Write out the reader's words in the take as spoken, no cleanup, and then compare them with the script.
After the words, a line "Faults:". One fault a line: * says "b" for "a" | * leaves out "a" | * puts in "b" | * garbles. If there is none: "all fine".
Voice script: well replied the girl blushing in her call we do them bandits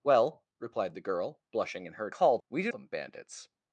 well replied the girl blushing in her call we do them bandits
Faults:
all fine